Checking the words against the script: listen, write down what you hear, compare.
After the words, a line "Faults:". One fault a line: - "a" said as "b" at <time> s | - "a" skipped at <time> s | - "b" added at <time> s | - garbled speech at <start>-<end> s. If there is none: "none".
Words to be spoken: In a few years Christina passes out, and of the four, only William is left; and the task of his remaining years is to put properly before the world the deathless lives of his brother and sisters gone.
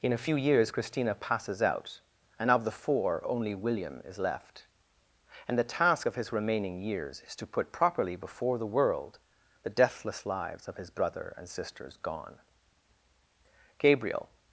In a few years Christina passes out, and of the four, only William is left; and the task of his remaining years is to put properly before the world the deathless lives of his brother and sisters gone. Gabriel
Faults:
- "Gabriel" added at 13.8 s